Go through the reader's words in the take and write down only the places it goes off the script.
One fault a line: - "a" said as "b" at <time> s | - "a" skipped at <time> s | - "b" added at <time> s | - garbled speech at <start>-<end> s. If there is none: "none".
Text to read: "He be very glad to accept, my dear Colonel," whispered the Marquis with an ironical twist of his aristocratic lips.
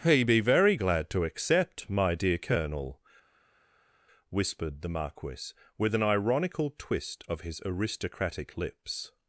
none